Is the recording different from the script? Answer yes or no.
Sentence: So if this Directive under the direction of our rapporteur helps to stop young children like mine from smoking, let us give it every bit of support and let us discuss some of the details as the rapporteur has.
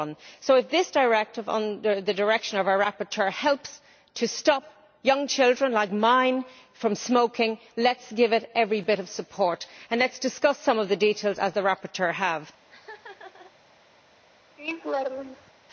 no